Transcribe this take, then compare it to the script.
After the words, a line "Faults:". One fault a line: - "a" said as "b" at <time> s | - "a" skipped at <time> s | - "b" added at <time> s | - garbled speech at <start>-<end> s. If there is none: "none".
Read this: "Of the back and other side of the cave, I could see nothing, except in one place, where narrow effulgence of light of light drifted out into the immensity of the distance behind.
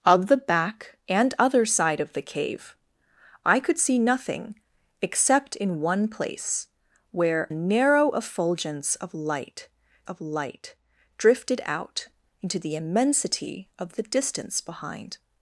"Of the back and other side of the cave, I could see nothing, except in one place, where narrow effulgence of light of light drifted out into the immensity of the distance behind.
Faults:
none